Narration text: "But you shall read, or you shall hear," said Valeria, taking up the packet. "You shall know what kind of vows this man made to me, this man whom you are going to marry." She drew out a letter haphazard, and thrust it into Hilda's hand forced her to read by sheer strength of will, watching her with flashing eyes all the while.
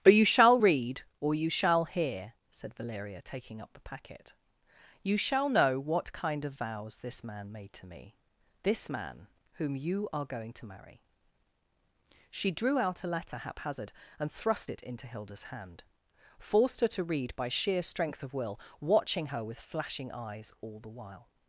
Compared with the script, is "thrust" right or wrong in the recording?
right